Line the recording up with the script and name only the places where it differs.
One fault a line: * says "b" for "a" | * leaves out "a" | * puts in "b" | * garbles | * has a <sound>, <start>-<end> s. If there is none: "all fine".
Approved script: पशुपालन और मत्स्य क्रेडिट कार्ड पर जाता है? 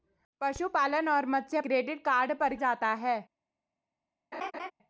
* has a laugh, 4.3-4.7 s